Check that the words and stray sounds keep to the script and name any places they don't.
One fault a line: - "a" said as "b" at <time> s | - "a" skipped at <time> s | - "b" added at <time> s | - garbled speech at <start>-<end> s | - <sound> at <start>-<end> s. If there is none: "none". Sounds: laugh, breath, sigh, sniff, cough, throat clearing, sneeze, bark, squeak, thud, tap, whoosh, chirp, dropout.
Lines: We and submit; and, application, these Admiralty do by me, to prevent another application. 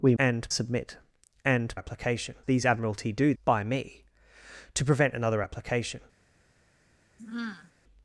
- sigh at 7.2-7.7 s